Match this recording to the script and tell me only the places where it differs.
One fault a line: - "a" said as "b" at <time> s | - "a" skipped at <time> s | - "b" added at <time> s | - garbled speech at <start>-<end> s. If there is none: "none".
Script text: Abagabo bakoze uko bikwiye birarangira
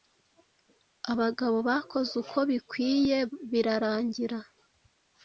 none